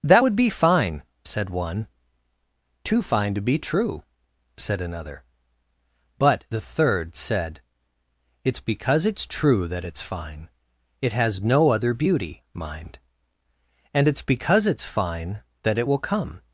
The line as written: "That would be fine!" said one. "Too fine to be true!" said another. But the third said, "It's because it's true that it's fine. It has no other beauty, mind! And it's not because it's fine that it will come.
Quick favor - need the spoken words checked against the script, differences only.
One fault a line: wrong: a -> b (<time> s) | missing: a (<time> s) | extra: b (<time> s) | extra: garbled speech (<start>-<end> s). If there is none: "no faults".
missing: not (14.2 s)